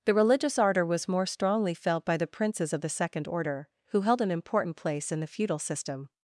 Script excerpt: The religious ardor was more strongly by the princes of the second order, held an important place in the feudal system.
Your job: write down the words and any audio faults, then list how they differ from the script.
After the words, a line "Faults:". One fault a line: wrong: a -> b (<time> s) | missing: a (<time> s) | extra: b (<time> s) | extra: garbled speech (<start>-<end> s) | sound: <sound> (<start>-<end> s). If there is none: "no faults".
The religious ardor was more strongly felt by the princes of the second order, who held an important place in the feudal system.
Faults:
extra: felt (1.8 s)
extra: who (3.9 s)